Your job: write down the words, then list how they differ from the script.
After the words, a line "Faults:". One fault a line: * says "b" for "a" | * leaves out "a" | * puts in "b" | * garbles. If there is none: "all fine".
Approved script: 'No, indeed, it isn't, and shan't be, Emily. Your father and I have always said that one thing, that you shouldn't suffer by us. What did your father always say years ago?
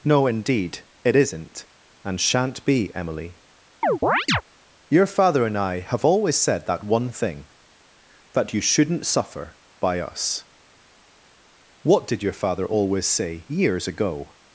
'No, indeed, it isn't, and shan't be, Emily. Your father and I have always said that one thing, that you shouldn't suffer by us. What did your father always say years ago?
Faults:
all fine